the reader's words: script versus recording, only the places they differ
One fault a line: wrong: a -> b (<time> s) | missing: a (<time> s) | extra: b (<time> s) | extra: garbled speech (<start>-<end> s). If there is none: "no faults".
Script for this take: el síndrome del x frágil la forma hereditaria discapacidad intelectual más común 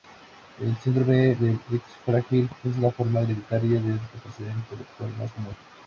extra: es (2.6 s)
extra: de (3.8 s)